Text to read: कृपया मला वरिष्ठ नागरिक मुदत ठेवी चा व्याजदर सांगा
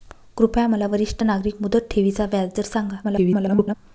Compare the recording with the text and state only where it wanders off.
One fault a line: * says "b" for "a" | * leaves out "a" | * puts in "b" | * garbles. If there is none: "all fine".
* garbles